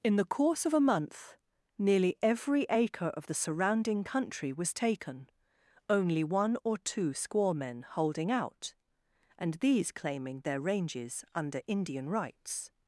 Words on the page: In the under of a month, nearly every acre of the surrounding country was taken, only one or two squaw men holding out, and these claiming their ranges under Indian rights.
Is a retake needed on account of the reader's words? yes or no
yes